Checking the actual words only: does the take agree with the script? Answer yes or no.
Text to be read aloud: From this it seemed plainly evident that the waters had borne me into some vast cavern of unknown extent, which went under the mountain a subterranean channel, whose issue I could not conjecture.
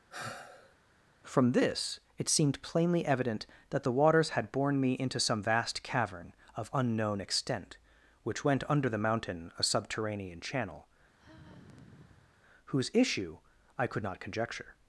yes